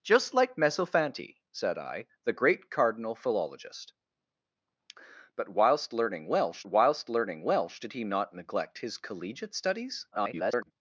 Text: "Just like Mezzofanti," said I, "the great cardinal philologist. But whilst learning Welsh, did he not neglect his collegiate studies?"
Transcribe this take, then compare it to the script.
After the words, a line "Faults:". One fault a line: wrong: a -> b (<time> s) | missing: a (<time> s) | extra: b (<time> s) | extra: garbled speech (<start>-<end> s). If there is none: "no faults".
"Just like Mezzofanti," said I, "the great cardinal philologist. But whilst learning Welsh whilst learning Welsh, did he not neglect his collegiate studies?" [garbled]
Faults:
extra: whilst learning Welsh (6.7 s)
extra: garbled speech (10.1-10.7 s)